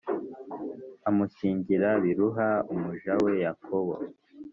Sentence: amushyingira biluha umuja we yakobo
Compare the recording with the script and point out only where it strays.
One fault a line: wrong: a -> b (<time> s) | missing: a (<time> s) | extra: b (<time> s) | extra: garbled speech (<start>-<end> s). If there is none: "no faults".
no faults